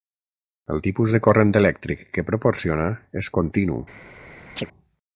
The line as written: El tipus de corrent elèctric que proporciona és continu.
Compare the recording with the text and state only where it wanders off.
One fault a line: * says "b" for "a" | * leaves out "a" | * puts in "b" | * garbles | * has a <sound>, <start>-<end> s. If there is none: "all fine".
* has a chirp, 4.6-4.7 s